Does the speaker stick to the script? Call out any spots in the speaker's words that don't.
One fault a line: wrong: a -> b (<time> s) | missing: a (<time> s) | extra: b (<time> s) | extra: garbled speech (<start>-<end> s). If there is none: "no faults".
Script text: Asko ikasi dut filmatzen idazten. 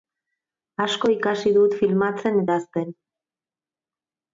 no faults